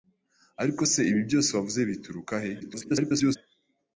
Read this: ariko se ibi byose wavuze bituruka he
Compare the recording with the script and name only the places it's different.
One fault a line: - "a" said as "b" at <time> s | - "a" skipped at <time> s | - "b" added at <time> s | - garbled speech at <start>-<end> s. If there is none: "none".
- garbled speech at 2.6-3.4 s